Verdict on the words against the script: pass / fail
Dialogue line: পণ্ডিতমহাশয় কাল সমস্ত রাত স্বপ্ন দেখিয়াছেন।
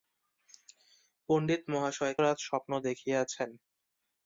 fail